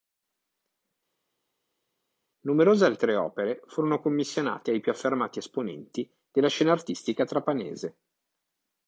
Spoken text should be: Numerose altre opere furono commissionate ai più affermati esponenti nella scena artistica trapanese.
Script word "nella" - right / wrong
wrong